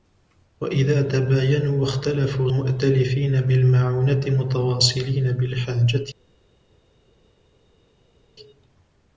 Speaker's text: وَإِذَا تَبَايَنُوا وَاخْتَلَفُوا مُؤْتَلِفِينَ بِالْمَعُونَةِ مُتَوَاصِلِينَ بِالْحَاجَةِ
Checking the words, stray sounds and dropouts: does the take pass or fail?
pass